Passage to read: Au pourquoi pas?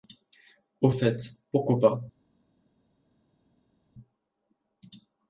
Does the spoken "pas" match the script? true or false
true